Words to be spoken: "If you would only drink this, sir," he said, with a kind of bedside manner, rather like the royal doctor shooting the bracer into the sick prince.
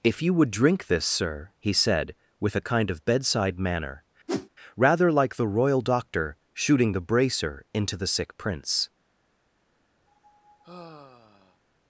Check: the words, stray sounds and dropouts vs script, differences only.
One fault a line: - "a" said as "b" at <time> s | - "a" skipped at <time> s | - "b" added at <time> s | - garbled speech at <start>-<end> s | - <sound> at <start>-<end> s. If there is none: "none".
- "only" skipped at 0.5 s
- whoosh at 4.3-4.5 s
- sigh at 10.1-11.6 s